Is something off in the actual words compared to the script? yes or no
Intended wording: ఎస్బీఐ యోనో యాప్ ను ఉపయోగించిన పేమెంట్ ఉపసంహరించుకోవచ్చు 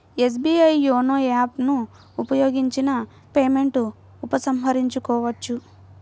no